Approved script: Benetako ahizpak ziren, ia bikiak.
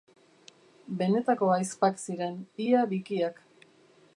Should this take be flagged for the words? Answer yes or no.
no